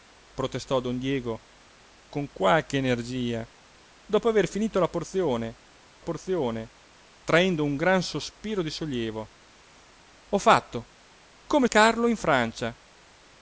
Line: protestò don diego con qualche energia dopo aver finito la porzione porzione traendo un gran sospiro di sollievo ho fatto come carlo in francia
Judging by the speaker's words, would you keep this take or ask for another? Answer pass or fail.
pass